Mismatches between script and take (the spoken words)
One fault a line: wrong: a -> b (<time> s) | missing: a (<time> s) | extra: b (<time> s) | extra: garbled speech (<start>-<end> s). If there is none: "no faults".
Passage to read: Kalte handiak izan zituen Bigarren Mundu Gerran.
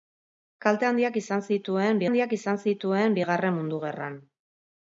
extra: handiak izan zituen (2.1 s)